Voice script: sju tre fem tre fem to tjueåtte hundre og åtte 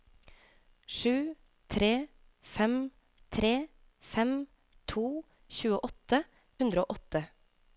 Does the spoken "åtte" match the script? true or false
true